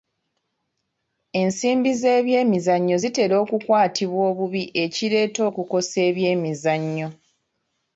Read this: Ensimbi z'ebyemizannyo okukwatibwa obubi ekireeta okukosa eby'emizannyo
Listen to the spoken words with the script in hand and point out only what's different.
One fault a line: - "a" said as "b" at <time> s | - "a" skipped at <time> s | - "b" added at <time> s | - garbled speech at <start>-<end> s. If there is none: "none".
- "zitera" added at 3.0 s